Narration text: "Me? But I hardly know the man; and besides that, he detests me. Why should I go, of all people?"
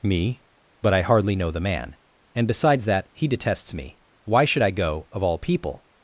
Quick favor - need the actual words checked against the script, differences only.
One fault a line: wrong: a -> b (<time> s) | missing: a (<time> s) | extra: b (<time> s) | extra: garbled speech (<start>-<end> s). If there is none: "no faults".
no faults